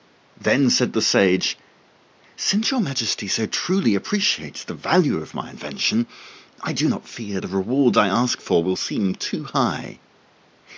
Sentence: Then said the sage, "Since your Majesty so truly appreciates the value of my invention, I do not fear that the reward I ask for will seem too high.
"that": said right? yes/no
no